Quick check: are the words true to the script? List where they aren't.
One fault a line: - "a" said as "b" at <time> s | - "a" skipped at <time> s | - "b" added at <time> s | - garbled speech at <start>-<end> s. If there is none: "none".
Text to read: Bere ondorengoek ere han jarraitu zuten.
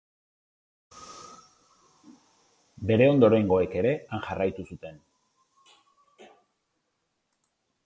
none